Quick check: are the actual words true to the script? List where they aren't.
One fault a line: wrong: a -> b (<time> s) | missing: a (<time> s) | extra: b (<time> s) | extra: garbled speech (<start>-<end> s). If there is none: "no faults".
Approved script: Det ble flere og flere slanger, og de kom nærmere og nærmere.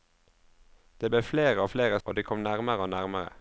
missing: slanger (2.0 s)